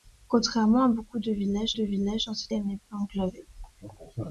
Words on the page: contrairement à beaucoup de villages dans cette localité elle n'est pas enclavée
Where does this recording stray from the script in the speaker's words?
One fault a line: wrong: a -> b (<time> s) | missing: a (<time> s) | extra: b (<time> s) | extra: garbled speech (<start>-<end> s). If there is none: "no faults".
extra: de villages (1.7 s)
missing: localité (2.5 s)